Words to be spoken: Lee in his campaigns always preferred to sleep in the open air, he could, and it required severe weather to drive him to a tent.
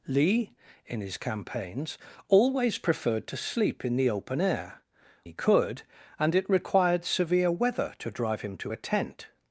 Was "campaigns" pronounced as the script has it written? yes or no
yes